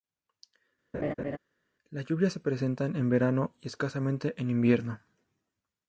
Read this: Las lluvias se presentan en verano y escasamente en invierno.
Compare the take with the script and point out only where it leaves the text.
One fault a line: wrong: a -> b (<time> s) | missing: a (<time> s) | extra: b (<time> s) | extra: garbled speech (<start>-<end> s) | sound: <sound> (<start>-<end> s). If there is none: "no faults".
sound: laugh (0.9-1.4 s)